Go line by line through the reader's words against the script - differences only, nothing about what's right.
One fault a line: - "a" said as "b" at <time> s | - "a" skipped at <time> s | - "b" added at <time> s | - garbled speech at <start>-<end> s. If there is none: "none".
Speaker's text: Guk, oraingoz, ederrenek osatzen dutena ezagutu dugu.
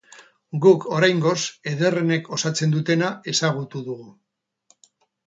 none